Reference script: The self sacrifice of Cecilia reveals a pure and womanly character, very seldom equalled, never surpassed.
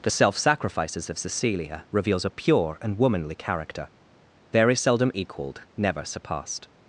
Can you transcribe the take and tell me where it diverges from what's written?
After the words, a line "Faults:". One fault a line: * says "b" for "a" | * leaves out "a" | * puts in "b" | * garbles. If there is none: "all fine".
The self sacrifices of Cecilia reveals a pure and womanly character, very seldom equalled, never surpassed.
Faults:
* says "sacrifices" for "sacrifice"